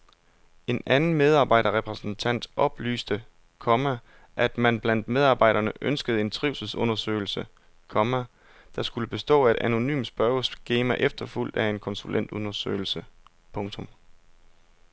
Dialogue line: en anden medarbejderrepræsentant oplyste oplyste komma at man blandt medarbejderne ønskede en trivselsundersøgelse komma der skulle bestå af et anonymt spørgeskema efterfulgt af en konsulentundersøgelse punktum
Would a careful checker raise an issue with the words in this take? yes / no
yes